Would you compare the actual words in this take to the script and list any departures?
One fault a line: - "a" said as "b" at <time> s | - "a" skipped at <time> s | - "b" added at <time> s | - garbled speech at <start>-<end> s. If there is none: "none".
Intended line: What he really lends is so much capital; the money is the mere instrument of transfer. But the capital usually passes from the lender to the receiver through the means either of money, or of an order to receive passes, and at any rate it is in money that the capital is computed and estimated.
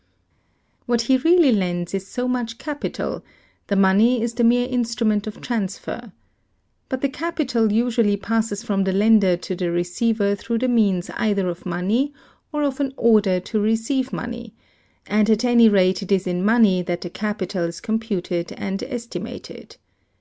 - "passes" said as "money" at 14.1 s